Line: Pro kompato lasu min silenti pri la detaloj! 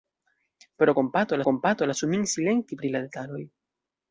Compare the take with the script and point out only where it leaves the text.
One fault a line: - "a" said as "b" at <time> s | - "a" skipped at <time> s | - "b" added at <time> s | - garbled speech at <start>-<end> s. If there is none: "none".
- "kompato" added at 1.5 s